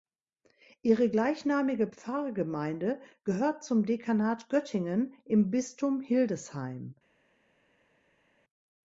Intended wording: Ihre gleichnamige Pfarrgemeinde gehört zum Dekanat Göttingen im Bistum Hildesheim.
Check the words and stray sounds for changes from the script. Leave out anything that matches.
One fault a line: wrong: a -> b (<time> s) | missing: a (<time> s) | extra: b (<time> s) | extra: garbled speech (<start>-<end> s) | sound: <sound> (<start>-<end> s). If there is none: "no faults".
no faults